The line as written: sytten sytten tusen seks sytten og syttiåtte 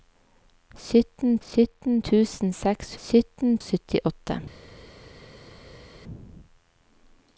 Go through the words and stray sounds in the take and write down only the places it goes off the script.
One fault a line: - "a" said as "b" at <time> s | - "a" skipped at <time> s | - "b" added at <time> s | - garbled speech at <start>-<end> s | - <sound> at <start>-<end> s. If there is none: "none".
none